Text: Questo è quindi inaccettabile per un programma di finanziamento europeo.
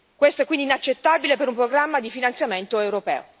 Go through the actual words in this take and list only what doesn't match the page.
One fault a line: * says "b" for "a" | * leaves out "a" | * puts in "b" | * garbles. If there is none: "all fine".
all fine